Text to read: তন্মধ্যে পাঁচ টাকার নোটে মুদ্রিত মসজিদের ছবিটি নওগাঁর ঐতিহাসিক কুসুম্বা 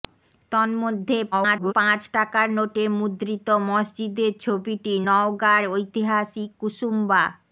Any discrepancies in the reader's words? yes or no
yes